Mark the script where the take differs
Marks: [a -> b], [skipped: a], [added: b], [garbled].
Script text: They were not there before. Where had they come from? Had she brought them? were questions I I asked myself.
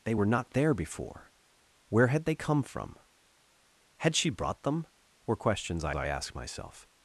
They were not there before. Where had they come from? Had she brought them? were questions I I asked myself.